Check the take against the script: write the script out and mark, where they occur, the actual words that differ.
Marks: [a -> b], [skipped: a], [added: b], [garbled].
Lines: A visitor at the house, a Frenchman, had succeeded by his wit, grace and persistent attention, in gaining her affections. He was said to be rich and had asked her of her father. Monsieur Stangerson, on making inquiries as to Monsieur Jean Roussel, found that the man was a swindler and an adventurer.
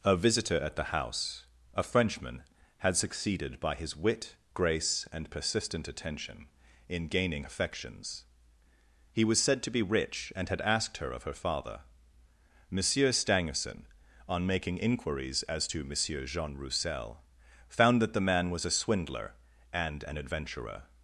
A visitor at the house, a Frenchman, had succeeded by his wit, grace and persistent attention, in gaining [skipped: her] affections. He was said to be rich and had asked her of her father. Monsieur Stangerson, on making inquiries as to Monsieur Jean Roussel, found that the man was a swindler and an adventurer.